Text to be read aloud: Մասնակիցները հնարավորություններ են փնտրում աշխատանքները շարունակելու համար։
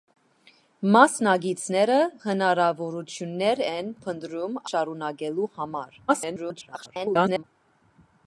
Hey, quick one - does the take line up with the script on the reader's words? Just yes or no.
no